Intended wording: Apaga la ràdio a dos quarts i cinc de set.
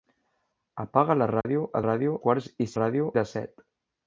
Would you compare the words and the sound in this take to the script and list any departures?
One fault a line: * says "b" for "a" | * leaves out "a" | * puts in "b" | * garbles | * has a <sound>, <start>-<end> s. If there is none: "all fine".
* has a dropout, 1.4-1.5 s
* says "ràdio" for "dos"
* says "ràdio" for "cinc"